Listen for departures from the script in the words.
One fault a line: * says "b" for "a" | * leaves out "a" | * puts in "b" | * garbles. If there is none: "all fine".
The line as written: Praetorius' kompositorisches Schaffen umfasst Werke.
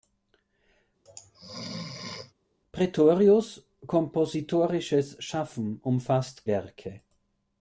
all fine